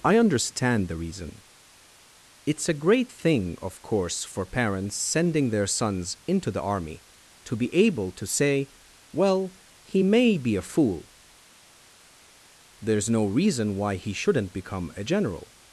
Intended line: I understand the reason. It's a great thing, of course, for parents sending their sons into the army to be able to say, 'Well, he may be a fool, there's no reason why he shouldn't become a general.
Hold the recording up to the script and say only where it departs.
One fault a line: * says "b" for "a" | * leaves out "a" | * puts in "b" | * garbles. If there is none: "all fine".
all fine